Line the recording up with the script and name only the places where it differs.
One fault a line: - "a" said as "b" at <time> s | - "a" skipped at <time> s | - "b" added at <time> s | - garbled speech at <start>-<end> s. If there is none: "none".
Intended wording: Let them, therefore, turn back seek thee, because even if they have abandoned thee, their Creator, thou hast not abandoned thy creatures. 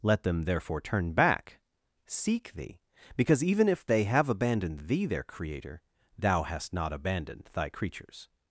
none